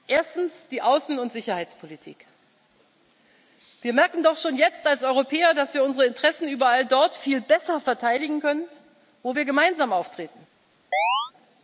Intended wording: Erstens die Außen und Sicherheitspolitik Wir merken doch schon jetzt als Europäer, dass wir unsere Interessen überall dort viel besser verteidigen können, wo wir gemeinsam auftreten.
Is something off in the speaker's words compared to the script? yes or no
no